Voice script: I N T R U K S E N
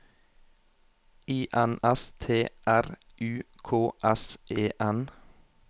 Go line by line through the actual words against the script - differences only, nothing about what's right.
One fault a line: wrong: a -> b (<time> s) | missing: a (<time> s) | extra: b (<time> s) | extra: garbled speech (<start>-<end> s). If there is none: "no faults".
extra: S (1.8 s)